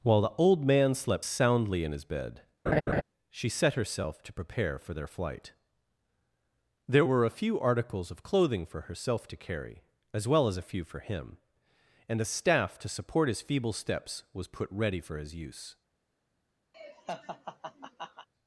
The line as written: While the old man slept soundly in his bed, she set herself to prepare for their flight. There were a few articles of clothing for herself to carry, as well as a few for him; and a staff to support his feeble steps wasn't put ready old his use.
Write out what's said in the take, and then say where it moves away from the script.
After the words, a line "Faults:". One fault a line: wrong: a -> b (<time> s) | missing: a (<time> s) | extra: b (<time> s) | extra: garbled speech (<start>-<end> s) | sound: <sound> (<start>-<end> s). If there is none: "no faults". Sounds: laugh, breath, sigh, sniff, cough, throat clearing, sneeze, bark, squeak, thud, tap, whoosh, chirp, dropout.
While the old man slept soundly in his bed, she set herself to prepare for their flight. There were a few articles of clothing for herself to carry, as well as a few for him; and a staff to support his feeble steps was put ready for his use.
Faults:
sound: laugh (2.7-3.0 s)
wrong: wasn't -> was (14.3 s)
wrong: old -> for (15.0 s)
sound: laugh (16.7-18.3 s)